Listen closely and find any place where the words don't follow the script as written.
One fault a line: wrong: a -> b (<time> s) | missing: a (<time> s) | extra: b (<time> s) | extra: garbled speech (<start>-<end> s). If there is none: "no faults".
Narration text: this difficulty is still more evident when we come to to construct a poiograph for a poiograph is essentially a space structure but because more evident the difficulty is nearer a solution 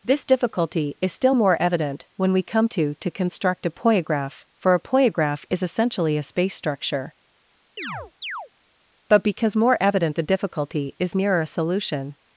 no faults